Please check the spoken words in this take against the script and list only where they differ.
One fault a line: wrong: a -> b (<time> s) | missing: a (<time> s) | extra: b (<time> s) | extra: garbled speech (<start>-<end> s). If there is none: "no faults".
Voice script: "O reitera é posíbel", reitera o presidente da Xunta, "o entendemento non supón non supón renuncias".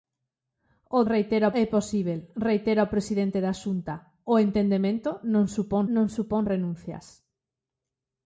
no faults